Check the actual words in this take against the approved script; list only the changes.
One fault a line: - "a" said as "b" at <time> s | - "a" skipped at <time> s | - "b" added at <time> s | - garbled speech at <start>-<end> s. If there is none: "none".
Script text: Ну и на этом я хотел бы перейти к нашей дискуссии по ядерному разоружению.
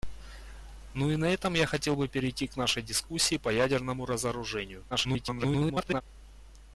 - garbled speech at 4.9-6.0 s